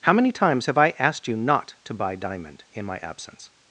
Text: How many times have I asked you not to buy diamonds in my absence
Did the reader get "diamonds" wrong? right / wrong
wrong